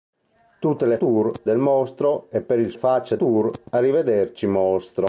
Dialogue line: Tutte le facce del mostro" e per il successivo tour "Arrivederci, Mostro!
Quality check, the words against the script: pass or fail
fail